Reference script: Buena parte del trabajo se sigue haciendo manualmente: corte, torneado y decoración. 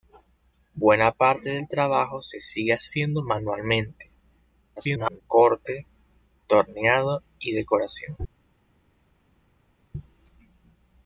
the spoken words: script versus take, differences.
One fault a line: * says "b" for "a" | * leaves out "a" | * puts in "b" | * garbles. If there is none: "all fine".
* garbles